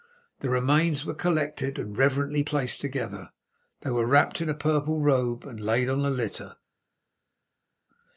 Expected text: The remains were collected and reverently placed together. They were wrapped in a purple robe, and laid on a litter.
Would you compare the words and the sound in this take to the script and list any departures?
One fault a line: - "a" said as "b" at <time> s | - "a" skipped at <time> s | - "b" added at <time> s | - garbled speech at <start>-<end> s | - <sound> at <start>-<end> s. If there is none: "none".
none